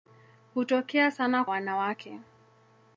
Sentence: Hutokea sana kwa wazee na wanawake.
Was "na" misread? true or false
true